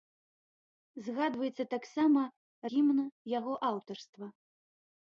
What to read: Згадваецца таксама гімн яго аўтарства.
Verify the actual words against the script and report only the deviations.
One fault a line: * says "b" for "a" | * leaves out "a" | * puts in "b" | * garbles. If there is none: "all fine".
all fine